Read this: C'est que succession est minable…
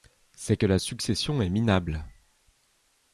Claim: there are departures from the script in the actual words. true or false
true